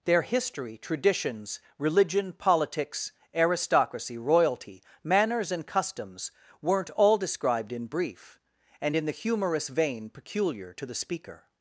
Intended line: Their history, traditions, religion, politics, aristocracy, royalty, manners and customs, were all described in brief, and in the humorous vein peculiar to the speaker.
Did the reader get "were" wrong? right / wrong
wrong